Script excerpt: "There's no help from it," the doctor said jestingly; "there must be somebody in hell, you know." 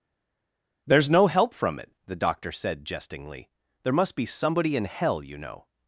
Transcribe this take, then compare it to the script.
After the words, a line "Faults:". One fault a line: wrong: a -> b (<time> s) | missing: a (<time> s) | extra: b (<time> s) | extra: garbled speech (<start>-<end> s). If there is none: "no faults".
"There's no help from it," the doctor said jestingly; "there must be somebody in hell, you know."
Faults:
no faults